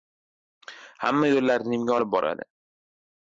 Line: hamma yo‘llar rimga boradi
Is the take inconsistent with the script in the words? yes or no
yes